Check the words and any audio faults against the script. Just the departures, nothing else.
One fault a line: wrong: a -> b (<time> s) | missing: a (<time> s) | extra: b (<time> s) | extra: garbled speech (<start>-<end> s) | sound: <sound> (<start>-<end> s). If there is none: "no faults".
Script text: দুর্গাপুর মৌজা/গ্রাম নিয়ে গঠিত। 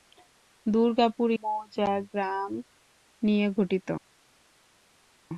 no faults